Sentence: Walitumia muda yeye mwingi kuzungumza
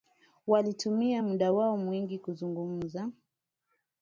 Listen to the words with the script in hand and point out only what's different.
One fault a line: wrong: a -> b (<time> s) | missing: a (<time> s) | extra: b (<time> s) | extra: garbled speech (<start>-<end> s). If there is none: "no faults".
wrong: yeye -> wao (1.5 s)